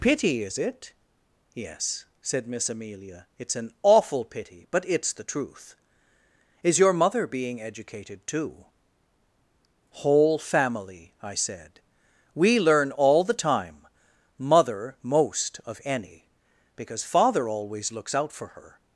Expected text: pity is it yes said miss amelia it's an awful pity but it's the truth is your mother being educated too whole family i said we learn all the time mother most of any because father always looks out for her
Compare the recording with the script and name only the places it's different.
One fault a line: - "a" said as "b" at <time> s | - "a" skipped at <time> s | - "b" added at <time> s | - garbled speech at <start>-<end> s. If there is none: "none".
none